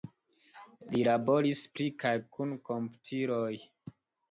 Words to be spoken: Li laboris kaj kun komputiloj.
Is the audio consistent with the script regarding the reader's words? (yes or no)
no